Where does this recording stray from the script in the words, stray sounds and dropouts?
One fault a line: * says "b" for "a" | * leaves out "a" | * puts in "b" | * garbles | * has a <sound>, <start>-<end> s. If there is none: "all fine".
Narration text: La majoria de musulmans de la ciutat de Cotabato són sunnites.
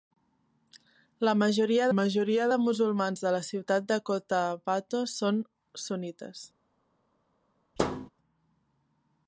* puts in "majoria"
* has a thud, 7.8-8.1 s